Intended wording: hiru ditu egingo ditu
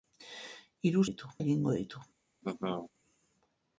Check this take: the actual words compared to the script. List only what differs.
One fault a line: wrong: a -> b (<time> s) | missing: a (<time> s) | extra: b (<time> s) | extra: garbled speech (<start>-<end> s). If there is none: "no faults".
no faults